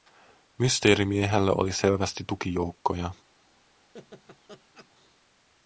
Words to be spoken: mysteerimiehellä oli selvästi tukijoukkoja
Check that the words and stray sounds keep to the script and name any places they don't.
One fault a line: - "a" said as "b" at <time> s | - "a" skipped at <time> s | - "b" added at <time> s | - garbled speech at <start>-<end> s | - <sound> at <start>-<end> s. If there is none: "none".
- laugh at 3.9-4.9 s